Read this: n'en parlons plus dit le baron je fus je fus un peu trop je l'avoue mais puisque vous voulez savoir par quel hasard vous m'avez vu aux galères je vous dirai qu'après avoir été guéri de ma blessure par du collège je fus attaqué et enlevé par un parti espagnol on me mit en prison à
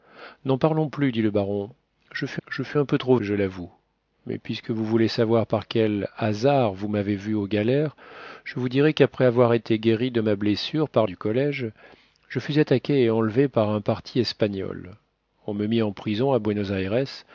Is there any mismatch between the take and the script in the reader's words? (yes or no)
no